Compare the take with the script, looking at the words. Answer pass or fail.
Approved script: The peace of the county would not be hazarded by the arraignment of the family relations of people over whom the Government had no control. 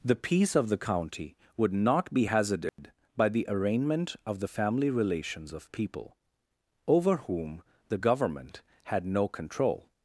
pass